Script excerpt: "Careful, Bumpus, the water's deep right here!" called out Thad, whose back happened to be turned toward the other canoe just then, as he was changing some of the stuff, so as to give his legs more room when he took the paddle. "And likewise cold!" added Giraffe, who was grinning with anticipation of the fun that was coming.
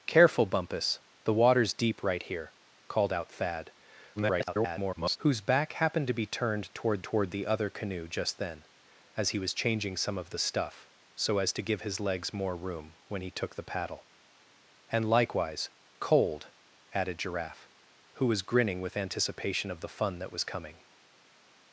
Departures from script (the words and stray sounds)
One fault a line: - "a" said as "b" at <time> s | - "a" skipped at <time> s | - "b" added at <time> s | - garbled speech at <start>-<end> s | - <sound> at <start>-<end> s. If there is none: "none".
- garbled speech at 4.2-5.2 s
- "toward" added at 7.0 s